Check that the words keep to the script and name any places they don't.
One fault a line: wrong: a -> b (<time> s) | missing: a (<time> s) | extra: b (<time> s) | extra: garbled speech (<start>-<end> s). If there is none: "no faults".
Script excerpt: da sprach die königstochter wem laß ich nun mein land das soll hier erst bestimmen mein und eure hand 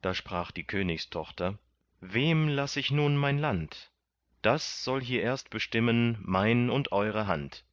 no faults